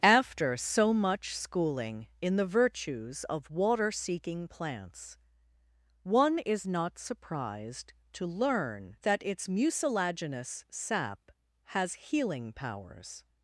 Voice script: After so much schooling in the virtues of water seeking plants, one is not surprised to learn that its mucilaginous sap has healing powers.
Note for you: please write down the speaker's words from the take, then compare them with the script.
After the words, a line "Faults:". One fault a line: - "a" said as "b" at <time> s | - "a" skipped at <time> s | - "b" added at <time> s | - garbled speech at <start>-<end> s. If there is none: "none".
After so much schooling in the virtues of water seeking plants, one is not surprised to learn that its mucilaginous sap has healing powers.
Faults:
none